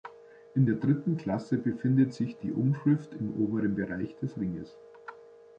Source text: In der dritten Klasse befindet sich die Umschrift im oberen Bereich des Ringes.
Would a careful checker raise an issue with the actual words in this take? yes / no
no